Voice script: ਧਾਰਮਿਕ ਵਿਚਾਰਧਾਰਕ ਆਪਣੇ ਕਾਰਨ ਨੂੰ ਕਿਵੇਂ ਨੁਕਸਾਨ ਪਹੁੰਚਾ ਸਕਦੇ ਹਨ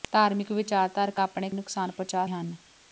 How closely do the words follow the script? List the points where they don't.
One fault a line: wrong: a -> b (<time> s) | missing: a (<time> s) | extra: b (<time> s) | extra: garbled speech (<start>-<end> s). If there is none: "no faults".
missing: ਕਾਰਨ ਨੂੰ ਕਿਵੇਂ (1.5 s)
missing: ਸਕਦੇ (2.3 s)